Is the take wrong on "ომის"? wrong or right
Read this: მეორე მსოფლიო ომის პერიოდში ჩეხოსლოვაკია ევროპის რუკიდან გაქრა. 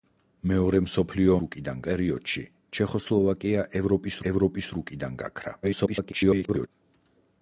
wrong